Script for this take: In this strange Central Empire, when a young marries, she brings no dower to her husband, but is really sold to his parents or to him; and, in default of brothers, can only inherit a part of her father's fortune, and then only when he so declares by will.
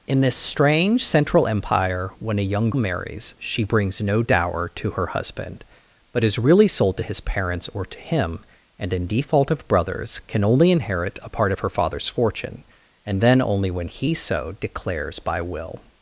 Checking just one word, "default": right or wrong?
right